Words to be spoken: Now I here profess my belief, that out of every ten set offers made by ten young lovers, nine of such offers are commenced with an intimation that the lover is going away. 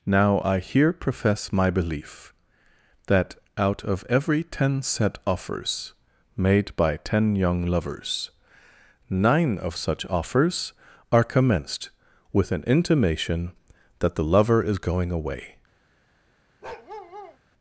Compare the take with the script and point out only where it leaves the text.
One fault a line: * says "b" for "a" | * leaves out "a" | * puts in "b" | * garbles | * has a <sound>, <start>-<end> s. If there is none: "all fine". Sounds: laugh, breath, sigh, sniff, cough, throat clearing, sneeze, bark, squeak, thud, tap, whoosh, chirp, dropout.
* has a bark, 16.6-17.4 s